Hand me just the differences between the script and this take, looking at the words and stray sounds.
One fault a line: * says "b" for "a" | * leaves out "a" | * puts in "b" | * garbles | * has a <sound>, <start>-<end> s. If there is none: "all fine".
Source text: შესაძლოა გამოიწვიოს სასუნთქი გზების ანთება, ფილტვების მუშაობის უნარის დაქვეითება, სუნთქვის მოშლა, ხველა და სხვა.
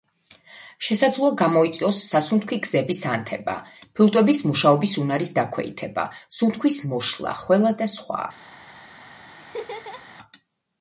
* has a laugh, 9.4-10.1 s